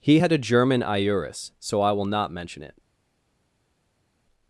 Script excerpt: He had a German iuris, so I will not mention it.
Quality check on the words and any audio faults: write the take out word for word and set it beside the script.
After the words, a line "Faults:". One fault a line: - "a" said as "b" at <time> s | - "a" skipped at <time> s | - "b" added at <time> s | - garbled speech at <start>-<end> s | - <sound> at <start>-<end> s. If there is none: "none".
He had a German iuris, so I will not mention it.
Faults:
none